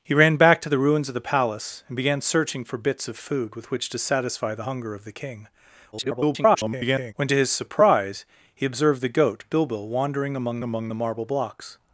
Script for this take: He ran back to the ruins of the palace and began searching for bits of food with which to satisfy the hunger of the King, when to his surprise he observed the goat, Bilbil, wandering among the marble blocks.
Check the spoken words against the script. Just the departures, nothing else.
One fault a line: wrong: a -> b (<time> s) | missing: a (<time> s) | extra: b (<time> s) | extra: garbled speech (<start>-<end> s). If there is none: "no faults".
extra: garbled speech (5.9-7.1 s)
extra: among (10.6 s)